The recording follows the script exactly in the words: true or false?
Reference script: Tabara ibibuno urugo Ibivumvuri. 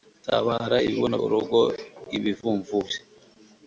true